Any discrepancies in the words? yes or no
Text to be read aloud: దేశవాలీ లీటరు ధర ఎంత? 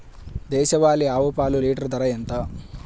yes